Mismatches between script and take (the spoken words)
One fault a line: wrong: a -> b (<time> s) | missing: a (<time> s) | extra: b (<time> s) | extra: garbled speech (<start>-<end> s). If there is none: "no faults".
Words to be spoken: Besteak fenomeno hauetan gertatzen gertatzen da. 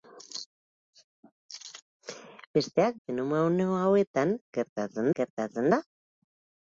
no faults